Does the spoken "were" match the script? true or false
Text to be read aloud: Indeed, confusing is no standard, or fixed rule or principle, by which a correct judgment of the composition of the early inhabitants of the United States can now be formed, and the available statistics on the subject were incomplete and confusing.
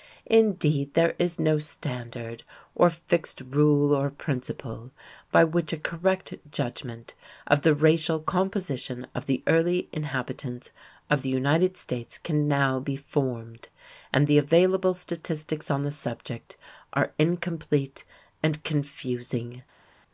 false